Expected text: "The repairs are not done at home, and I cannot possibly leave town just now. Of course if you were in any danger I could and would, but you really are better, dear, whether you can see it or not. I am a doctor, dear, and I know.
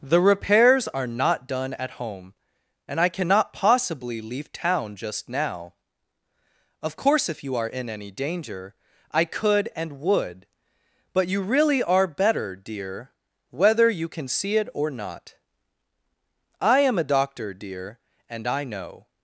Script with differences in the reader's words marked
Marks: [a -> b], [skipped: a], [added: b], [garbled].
"The repairs are not done at home, and I cannot possibly leave town just now. Of course if you [were -> are] in any danger I could and would, but you really are better, dear, whether you can see it or not. I am a doctor, dear, and I know.